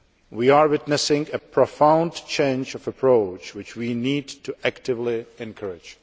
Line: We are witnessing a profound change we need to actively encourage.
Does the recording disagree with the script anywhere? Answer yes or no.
yes